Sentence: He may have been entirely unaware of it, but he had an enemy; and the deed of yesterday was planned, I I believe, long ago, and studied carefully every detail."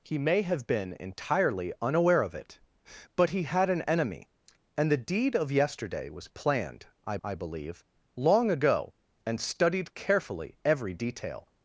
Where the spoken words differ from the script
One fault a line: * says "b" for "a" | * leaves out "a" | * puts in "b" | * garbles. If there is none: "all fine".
all fine